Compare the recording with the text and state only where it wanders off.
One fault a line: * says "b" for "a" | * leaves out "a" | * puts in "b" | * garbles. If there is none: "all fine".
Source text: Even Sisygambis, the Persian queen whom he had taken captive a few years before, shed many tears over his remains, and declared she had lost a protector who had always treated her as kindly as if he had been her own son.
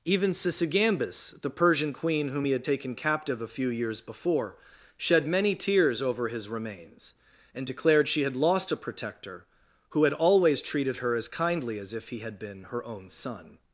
all fine